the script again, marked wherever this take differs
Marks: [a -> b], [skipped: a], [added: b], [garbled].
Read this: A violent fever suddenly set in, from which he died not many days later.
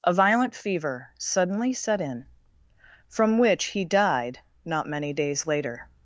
A violent fever suddenly set in, from which he died not many days later.